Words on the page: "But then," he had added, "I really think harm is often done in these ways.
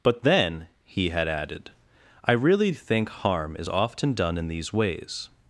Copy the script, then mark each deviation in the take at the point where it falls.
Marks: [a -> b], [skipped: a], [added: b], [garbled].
"But then," he had added, "I really think harm is often done in these ways.